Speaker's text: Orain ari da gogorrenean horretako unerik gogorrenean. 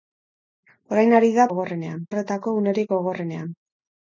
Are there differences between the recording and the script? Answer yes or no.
no